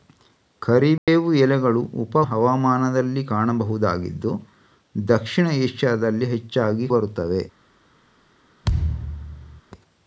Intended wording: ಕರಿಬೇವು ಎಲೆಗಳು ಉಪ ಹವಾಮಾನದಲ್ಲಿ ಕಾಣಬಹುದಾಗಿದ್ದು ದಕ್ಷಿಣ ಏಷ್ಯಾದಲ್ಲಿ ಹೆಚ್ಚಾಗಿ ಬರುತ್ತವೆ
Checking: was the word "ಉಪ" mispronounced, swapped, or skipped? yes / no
no